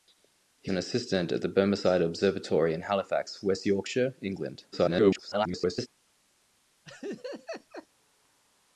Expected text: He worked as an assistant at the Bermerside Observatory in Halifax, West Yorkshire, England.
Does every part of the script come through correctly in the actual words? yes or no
no